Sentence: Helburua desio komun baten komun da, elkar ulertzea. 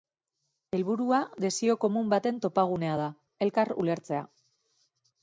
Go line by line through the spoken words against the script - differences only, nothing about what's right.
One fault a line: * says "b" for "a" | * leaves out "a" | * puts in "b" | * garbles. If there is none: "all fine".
* says "topagunea" for "komun"